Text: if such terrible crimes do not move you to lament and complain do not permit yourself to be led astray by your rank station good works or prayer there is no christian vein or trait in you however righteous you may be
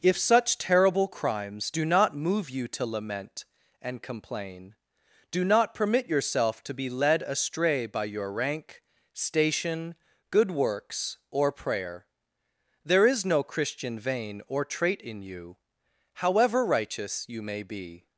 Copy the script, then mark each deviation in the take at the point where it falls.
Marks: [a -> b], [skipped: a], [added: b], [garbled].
if such terrible crimes do not move you to lament and complain do not permit yourself to be led astray by your rank station good works or prayer there is no christian vein or trait in you however righteous you may be